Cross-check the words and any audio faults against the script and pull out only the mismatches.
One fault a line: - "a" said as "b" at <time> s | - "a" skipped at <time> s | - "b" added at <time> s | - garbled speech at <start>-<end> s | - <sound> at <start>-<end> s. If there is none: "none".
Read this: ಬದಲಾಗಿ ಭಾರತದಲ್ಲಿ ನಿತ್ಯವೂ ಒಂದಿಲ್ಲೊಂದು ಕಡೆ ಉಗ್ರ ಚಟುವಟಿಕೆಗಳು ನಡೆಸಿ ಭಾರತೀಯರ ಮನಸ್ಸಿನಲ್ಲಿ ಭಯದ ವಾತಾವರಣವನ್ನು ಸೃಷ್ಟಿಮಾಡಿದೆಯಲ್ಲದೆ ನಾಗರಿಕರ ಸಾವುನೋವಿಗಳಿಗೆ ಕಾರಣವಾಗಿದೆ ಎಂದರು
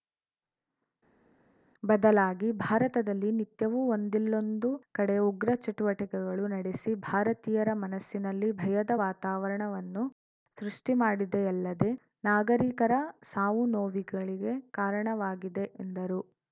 none